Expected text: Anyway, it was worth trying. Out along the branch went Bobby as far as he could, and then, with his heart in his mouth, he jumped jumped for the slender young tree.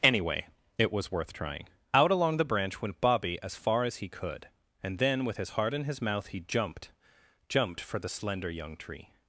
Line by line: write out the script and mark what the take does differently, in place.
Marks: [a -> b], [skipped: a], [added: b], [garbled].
Anyway, it was worth trying. Out along the branch went Bobby as far as he could, and then, with his heart in his mouth, he jumped jumped for the slender young tree.